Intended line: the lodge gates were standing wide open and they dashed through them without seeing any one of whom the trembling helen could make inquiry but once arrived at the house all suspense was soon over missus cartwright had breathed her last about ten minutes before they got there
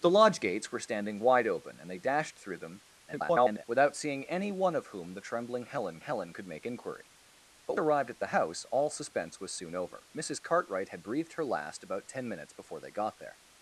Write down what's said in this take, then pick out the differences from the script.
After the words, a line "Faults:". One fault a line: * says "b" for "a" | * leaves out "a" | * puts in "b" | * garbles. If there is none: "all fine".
the lodge gates were standing wide open and they dashed through them [garbled] without seeing any one of whom the trembling helen helen could make inquiry but arrived at the house all suspense was soon over missus cartwright had breathed her last about ten minutes before they got there
Faults:
* garbles
* puts in "helen"
* leaves out "once"